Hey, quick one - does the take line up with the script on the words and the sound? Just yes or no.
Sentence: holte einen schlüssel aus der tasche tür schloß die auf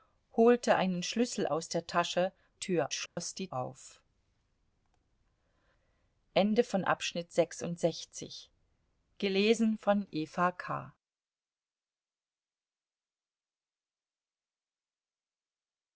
no